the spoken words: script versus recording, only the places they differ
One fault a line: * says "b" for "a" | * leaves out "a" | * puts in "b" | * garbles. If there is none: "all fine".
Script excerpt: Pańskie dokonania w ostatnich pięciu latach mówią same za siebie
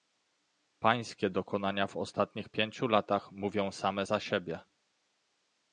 all fine